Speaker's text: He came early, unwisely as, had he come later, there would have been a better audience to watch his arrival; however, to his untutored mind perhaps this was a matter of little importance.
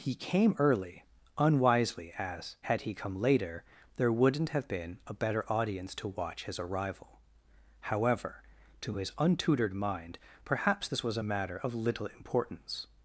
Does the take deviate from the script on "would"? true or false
true